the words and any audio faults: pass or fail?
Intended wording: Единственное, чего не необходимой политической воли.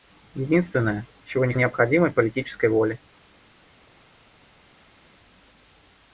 pass